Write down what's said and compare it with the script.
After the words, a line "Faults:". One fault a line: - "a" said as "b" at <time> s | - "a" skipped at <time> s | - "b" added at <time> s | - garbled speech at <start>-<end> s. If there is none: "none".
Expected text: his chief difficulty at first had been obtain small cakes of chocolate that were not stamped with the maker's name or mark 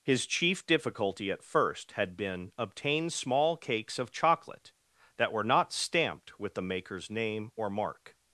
his chief difficulty at first had been obtain small cakes of chocolate that were not stamped with the maker's name or mark
Faults:
none